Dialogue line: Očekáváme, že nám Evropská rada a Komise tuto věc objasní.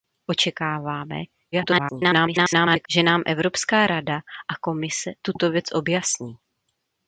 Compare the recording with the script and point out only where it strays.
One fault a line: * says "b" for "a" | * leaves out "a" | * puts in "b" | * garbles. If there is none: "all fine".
* garbles